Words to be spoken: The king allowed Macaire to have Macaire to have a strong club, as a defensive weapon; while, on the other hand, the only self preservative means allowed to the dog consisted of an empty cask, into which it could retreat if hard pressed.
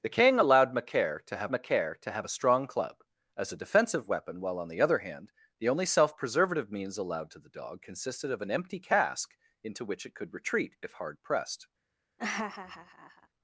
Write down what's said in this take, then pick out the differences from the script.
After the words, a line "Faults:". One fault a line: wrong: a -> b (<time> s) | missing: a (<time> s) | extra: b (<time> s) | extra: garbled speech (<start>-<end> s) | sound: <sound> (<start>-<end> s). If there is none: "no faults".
The king allowed Macaire to have Macaire to have a strong club, as a defensive weapon; while, on the other hand, the only self preservative means allowed to the dog consisted of an empty cask, into which it could retreat if hard pressed.
Faults:
sound: laugh (12.2-13.3 s)